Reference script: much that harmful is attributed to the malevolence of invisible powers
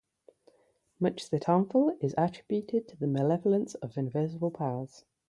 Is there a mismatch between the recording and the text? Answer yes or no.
no